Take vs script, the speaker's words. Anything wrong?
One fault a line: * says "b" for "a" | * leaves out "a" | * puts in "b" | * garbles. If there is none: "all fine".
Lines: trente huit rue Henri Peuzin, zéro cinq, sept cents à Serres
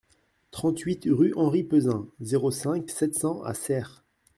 all fine